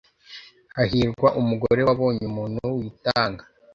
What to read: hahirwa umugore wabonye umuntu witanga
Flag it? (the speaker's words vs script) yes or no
no